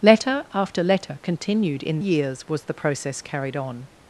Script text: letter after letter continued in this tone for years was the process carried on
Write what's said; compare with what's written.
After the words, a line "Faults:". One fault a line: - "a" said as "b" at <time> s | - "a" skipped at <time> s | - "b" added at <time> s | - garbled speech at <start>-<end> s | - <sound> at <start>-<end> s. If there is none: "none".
letter after letter continued in years was the process carried on
Faults:
- "this tone for" skipped at 2.0 s